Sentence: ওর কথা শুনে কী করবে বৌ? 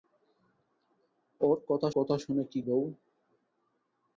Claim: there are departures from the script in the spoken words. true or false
true